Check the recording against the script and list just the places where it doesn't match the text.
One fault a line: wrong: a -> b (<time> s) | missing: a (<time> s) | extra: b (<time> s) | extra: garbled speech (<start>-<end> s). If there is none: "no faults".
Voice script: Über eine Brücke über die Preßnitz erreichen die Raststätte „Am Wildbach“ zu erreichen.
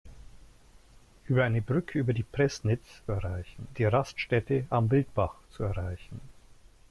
no faults